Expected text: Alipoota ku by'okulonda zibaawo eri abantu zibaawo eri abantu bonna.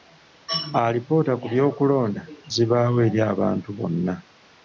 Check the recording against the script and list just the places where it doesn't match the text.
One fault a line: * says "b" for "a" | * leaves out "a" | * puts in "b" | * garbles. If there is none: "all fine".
* leaves out "zibaawo eri abantu"